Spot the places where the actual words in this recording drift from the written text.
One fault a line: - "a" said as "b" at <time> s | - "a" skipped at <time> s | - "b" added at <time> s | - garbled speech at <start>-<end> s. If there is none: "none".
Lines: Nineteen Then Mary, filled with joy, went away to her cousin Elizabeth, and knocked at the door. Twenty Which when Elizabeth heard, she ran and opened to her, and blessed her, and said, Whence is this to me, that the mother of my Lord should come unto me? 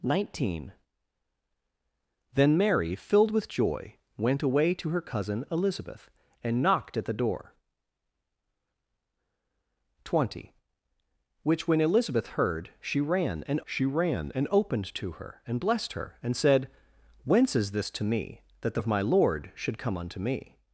- "she ran and" added at 13.6 s
- "mother" skipped at 18.8 s